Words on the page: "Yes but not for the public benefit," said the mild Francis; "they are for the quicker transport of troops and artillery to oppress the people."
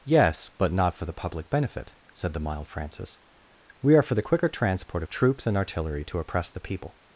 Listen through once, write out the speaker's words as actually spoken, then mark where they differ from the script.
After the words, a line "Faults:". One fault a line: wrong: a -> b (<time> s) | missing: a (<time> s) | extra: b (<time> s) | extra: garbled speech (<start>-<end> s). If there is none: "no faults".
"Yes but not for the public benefit," said the mild Francis; "we are for the quicker transport of troops and artillery to oppress the people."
Faults:
wrong: they -> we (3.8 s)